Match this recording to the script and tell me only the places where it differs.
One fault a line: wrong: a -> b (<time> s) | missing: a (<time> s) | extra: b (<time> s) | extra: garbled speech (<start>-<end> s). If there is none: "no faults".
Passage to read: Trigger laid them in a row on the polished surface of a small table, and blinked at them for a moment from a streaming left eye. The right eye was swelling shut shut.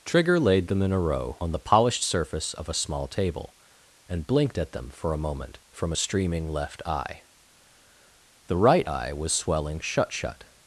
no faults